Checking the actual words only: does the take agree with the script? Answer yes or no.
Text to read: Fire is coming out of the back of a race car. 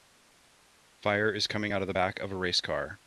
yes